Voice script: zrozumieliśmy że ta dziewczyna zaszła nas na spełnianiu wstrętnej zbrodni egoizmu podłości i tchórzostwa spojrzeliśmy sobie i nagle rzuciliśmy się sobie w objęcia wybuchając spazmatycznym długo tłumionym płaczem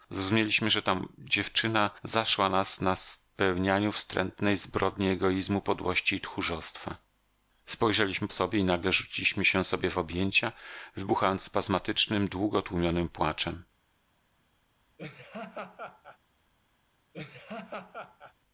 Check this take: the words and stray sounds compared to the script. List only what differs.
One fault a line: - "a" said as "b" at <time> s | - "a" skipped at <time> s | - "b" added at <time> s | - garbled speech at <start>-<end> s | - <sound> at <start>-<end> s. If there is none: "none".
- laugh at 15.0-16.2 s
- laugh at 17.1-18.3 s